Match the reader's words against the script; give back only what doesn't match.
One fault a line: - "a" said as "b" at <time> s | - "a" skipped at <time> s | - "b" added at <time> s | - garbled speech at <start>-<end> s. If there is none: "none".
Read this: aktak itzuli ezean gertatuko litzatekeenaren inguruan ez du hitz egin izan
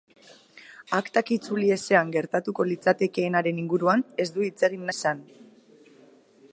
none